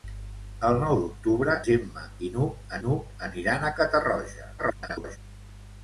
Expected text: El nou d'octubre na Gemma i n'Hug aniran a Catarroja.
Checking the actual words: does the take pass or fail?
fail